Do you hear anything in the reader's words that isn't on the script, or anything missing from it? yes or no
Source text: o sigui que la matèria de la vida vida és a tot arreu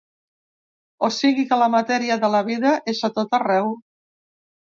yes